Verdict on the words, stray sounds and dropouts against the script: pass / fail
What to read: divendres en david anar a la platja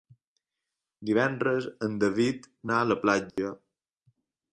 fail